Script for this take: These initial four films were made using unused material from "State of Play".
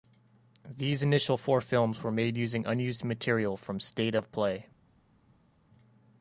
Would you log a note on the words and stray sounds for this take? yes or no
no